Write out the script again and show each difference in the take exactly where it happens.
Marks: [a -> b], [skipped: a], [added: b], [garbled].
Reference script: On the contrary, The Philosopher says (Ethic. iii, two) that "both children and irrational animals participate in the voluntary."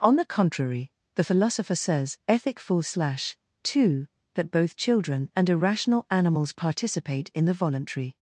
On the contrary, The Philosopher says (Ethic. [iii, -> full slash] two) that "both children and irrational animals participate in the voluntary."